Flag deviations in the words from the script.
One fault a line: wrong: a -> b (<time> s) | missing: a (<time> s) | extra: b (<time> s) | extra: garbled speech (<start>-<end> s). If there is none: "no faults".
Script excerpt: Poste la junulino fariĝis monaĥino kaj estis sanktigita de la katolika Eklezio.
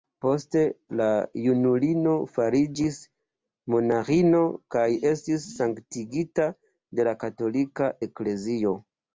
no faults